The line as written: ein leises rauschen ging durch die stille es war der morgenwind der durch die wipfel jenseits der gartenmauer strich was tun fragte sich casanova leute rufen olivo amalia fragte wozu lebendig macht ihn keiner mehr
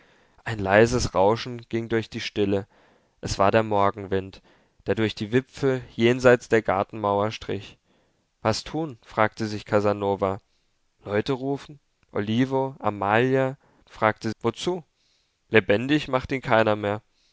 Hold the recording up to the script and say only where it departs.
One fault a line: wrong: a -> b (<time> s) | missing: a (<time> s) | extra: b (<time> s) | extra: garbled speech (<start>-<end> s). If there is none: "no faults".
no faults